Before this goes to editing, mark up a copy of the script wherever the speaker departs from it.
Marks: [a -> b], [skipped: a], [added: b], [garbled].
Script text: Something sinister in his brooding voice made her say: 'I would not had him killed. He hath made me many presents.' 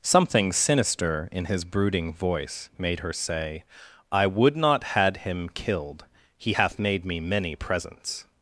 Something sinister in his brooding voice made her say: 'I would not had him killed. He hath made me many presents.'